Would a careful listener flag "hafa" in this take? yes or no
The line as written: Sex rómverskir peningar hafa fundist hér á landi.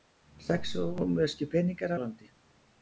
yes